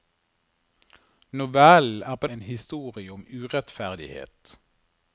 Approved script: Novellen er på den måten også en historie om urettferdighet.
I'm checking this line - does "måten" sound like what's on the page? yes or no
no